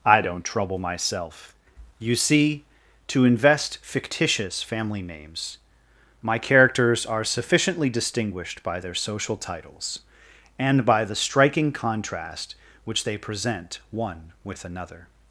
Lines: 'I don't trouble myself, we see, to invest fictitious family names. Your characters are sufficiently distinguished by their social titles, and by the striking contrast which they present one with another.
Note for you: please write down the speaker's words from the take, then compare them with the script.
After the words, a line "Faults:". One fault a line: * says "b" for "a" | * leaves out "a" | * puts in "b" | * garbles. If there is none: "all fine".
'I don't trouble myself, you see, to invest fictitious family names. My characters are sufficiently distinguished by their social titles, and by the striking contrast which they present one with another.
Faults:
* says "you" for "we"
* says "My" for "Your"